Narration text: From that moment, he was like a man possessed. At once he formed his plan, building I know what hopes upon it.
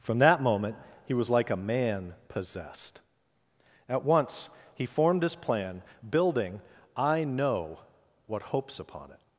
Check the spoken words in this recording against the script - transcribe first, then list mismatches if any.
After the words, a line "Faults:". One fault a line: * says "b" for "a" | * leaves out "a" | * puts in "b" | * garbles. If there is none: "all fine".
From that moment, he was like a man possessed. At once he formed his plan, building I know what hopes upon it.
Faults:
all fine